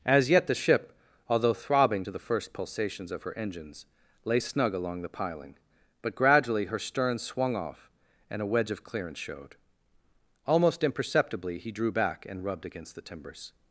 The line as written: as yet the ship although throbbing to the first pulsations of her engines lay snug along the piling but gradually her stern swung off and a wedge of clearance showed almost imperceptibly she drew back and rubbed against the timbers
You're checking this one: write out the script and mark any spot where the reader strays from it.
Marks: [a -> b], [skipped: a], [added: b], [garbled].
as yet the ship although throbbing to the first pulsations of her engines lay snug along the piling but gradually her stern swung off and a wedge of clearance showed almost imperceptibly [she -> he] drew back and rubbed against the timbers